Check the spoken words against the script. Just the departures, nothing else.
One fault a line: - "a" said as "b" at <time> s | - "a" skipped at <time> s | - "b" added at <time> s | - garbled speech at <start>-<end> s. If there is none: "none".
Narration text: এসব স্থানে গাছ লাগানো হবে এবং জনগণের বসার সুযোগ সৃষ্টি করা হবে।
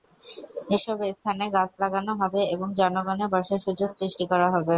none